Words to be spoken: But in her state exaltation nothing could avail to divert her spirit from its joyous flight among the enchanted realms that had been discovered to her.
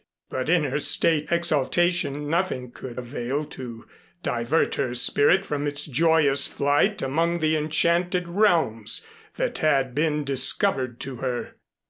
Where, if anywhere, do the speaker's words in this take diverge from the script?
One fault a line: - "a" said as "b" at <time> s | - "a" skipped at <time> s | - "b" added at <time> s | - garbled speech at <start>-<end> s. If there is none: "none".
none